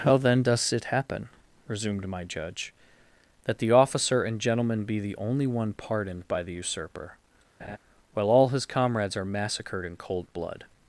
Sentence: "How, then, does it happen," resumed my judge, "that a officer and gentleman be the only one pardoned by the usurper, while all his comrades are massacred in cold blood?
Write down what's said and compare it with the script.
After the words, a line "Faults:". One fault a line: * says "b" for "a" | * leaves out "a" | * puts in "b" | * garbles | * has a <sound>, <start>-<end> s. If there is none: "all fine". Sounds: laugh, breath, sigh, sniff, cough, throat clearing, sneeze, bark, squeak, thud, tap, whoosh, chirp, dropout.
"How, then, does it happen," resumed my judge, "that the officer and gentleman be the only one pardoned by the usurper, while all his comrades are massacred in cold blood?
Faults:
* says "the" for "a"
* has a laugh, 7.6-7.8 s